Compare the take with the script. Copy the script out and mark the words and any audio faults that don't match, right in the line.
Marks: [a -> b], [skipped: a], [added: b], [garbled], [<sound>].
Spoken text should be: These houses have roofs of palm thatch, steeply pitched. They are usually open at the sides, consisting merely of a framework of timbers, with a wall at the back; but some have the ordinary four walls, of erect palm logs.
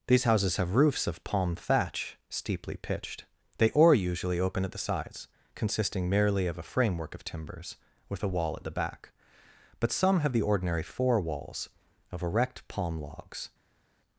These houses have roofs of palm thatch, steeply pitched. They [are -> or] usually open at the sides, consisting merely of a framework of timbers, with a wall at the back; but some have the ordinary four walls, of erect palm logs.